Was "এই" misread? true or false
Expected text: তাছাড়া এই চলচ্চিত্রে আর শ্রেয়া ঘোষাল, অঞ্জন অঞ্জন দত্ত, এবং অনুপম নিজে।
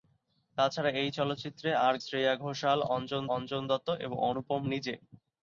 false